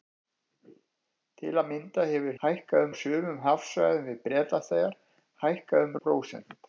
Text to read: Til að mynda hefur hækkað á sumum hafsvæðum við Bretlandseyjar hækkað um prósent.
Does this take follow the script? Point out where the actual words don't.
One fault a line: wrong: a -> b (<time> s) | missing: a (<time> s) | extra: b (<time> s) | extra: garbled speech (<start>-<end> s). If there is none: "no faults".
no faults